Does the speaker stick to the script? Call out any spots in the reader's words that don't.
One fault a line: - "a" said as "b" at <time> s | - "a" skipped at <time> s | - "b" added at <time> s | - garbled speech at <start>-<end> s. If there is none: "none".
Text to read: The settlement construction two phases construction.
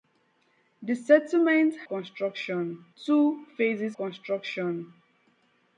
none